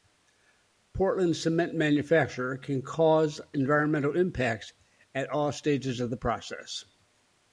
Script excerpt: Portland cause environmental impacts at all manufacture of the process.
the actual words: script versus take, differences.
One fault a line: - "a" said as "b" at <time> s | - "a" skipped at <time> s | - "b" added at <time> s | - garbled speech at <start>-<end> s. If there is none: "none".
- "cement manufacture can" added at 1.4 s
- "manufacture" said as "stages" at 5.5 s